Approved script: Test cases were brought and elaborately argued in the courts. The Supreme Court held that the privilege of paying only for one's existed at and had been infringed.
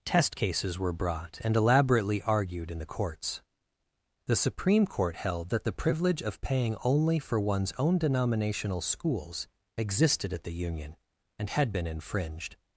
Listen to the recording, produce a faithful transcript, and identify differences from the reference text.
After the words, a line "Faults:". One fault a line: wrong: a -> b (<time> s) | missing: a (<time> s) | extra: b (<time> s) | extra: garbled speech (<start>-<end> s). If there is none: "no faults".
Test cases were brought and elaborately argued in the courts. The Supreme Court held that the privilege of paying only for one's own denominational schools existed at the union, and had been infringed.
Faults:
extra: own denominational schools (7.8 s)
extra: the union (10.4 s)